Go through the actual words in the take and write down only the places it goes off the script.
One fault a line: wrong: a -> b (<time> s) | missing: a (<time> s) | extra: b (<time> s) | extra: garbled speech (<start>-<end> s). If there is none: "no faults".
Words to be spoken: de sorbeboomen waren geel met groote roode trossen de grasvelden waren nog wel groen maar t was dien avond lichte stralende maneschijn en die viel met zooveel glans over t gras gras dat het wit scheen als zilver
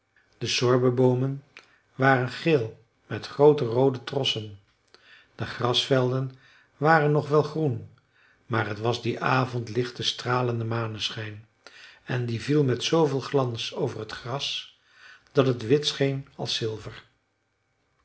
missing: gras (14.8 s)